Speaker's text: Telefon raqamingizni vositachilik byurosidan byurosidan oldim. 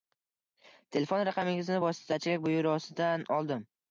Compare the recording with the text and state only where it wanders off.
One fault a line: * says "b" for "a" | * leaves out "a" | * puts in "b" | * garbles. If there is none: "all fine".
* leaves out "byurosidan"